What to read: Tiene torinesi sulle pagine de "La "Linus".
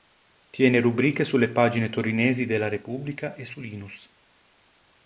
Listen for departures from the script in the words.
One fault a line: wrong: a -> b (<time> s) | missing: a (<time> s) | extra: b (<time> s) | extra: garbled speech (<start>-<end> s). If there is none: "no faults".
wrong: torinesi -> rubriche (0.8 s)
extra: torinesi (1.9 s)
extra: Repubblica e su (2.7 s)